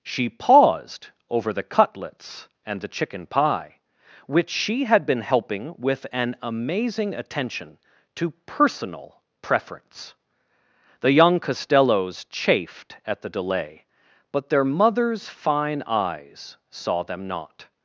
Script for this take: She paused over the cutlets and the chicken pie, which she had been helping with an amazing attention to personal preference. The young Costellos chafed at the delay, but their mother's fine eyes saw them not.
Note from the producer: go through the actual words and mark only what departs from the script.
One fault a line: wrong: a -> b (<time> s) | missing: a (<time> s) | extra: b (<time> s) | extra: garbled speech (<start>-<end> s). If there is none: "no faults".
no faults